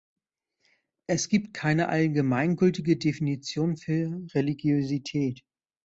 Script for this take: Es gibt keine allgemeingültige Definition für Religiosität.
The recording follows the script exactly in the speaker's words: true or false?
true